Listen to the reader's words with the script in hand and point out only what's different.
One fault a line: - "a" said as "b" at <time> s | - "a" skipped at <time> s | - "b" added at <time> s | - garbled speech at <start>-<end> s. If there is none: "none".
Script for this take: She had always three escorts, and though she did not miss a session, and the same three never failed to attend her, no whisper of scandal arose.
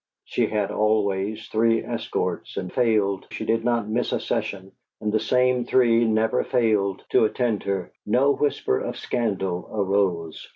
- "though" said as "failed" at 2.7 s